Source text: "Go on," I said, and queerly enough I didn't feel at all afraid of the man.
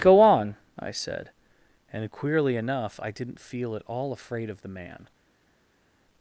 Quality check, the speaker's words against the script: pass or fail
pass